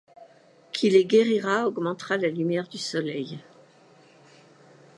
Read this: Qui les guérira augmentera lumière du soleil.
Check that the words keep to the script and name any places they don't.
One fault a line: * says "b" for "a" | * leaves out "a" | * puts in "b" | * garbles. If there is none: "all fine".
* puts in "la"